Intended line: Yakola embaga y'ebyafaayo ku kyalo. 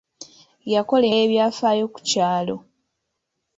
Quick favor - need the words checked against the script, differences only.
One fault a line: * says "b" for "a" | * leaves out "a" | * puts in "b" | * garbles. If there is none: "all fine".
* leaves out "embaga"